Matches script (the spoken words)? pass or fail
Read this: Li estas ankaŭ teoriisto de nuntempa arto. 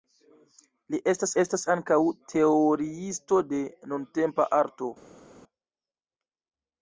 fail